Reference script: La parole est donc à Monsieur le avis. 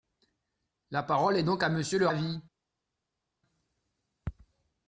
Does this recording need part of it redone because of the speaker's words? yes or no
no